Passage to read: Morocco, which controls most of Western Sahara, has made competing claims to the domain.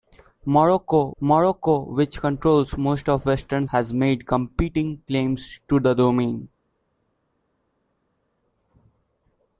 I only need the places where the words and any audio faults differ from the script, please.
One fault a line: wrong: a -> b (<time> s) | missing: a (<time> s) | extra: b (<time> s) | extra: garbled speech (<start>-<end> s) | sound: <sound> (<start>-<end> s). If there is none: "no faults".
extra: morocco (1.2 s)
missing: Sahara (3.6 s)